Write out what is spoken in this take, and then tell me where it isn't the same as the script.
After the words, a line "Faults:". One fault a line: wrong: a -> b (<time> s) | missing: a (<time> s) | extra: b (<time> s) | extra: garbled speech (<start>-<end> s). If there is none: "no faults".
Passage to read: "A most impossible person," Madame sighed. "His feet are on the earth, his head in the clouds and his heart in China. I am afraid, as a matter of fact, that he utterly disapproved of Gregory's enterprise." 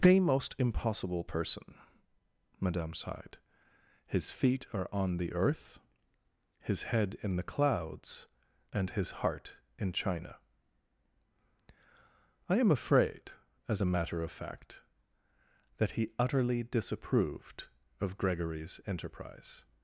"The most impossible person," Madame sighed. "His feet are on the earth, his head in the clouds and his heart in China. I am afraid, as a matter of fact, that he utterly disapproved of Gregory's enterprise."
Faults:
wrong: A -> The (0.0 s)